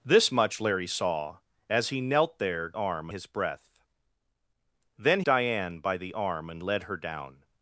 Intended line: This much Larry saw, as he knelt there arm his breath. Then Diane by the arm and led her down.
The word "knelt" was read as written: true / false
true